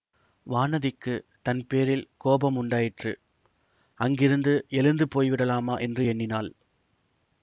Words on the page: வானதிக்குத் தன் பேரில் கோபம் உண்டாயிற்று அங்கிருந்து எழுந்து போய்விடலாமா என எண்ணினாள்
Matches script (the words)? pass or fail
fail